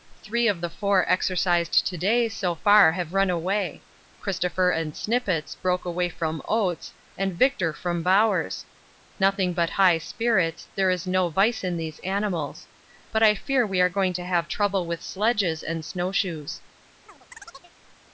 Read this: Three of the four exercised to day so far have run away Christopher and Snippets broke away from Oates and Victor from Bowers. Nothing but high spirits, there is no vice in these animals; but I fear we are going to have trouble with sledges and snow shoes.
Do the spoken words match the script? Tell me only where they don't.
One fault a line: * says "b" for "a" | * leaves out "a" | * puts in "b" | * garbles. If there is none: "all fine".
all fine